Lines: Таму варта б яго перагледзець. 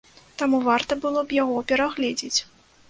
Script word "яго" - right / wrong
right